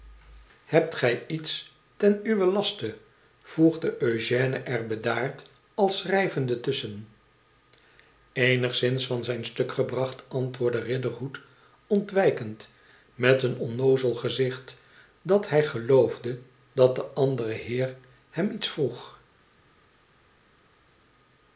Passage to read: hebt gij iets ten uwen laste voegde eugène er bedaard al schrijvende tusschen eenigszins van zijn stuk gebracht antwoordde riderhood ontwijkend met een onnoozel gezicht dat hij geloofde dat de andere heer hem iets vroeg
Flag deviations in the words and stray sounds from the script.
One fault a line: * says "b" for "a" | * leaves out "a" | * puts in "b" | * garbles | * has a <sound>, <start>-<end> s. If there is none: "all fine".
all fine